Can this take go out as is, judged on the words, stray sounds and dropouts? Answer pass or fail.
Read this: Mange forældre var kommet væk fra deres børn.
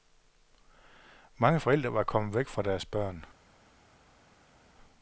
pass